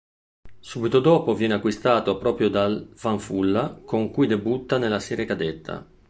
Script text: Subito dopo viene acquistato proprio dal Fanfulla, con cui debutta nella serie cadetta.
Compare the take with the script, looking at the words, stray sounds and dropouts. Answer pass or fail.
pass